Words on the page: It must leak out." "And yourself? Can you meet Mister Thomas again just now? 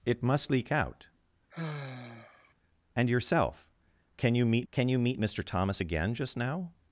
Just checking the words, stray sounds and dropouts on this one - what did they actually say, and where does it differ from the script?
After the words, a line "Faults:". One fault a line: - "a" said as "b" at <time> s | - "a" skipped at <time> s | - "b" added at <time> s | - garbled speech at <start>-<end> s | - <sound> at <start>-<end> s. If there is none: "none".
It must leak out." "And yourself? Can you meet can you meet Mister Thomas again just now?
Faults:
- sigh at 1.5-2.5 s
- "can you meet" added at 4.7 s